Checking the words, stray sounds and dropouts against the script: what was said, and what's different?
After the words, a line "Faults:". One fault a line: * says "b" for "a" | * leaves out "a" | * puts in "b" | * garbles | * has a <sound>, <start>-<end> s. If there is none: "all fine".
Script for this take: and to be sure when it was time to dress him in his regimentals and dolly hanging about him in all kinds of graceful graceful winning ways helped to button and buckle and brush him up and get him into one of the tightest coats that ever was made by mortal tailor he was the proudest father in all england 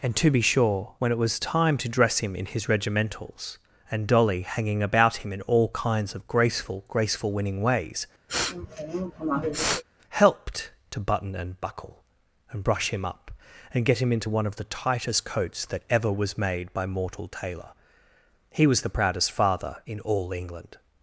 and to be sure when it was time to dress him in his regimentals and dolly hanging about him in all kinds of graceful graceful winning ways helped to button and buckle and brush him up and get him into one of the tightest coats that ever was made by mortal tailor he was the proudest father in all england
Faults:
* has a sniff, 8.3-9.8 s